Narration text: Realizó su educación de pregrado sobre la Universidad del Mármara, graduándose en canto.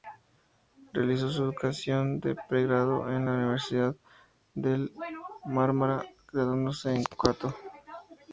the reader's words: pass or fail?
fail